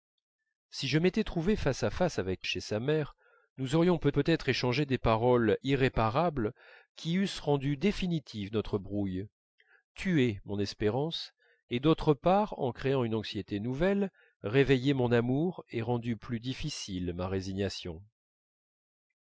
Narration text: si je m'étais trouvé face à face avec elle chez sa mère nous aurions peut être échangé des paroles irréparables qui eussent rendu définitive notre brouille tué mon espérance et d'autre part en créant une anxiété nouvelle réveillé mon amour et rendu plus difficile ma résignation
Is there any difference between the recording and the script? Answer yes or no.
yes